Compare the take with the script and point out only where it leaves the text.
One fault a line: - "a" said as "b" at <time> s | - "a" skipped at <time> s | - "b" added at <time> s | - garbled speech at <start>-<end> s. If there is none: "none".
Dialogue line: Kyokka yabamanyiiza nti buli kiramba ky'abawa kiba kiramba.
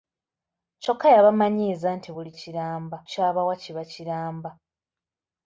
none